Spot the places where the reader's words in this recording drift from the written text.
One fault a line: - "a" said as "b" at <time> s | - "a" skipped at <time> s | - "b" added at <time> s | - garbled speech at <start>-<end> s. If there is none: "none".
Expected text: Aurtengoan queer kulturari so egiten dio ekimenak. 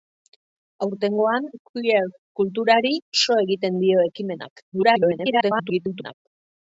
- garbled speech at 4.7-6.1 s